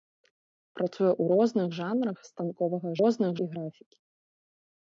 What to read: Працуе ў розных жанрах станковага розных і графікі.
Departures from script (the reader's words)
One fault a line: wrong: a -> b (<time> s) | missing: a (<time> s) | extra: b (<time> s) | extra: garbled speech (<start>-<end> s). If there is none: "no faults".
no faults